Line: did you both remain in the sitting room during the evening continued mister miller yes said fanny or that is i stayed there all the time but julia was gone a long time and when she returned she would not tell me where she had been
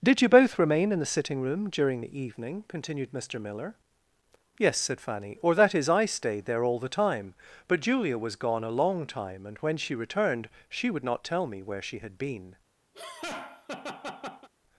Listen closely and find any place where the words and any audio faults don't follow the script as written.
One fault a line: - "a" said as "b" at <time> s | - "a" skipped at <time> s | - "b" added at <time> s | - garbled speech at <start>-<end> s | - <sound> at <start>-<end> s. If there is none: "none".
- laugh at 12.9-14.5 s